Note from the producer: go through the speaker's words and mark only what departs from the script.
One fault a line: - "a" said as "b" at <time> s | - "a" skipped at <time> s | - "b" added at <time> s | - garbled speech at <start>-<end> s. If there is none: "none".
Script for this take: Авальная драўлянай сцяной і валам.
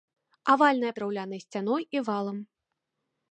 none